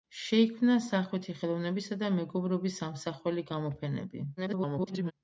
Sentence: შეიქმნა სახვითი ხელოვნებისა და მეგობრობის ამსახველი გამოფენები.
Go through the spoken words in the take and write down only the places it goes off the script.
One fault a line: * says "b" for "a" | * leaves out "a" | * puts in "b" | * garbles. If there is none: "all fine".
* garbles